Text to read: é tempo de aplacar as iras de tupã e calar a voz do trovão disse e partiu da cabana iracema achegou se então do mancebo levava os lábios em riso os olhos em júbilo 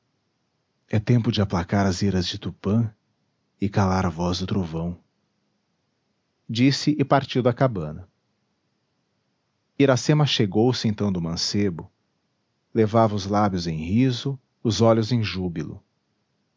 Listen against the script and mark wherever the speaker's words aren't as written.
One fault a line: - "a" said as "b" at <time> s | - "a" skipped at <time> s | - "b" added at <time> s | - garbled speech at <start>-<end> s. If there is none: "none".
none